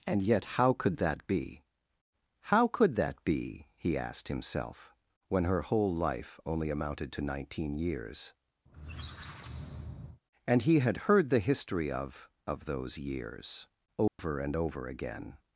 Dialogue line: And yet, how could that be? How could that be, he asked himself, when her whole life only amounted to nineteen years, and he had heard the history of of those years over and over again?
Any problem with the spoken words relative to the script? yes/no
no